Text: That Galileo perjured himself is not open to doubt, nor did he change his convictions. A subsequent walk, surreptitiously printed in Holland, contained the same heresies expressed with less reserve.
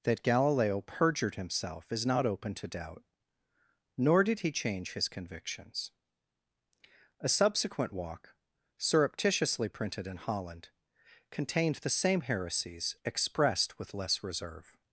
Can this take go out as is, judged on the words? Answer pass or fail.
pass